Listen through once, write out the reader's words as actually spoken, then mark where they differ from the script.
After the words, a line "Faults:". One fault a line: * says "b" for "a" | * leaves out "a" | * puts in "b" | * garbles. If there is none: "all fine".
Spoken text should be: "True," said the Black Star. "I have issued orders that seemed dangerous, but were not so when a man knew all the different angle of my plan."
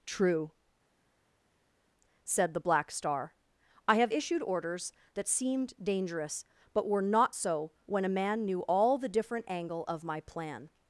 "True," said the Black Star. "I have issued orders that seemed dangerous, but were not so when a man knew all the different angle of my plan."
Faults:
all fine